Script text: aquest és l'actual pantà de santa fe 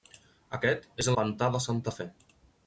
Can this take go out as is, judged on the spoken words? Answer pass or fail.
fail